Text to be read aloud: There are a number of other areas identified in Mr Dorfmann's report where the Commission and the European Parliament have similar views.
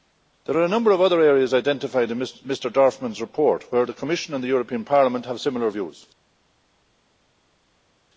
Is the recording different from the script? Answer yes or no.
no